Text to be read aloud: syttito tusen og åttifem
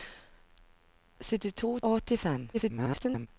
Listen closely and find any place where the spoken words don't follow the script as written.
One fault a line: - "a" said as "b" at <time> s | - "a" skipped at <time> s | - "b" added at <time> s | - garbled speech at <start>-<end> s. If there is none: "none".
- "tusen" skipped at 1.8 s
- garbled speech at 2.5-3.3 s